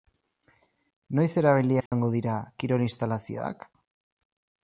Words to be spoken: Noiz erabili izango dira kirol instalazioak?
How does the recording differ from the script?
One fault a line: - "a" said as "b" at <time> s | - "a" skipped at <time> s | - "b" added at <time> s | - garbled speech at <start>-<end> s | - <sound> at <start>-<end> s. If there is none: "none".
- dropout at 1.9-1.9 s